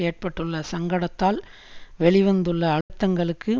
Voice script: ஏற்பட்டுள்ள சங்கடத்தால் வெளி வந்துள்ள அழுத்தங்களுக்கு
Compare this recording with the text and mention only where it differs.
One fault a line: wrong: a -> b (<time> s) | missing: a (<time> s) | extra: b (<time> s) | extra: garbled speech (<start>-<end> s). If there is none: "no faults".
no faults